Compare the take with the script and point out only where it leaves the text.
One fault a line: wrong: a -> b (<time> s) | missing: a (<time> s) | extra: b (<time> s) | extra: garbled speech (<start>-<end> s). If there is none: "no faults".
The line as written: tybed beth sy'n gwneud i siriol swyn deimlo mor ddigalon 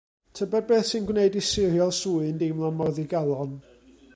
no faults